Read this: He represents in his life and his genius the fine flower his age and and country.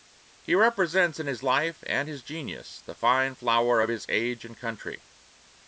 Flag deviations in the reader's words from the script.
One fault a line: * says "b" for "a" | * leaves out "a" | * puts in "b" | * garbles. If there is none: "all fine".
* puts in "of"
* leaves out "and"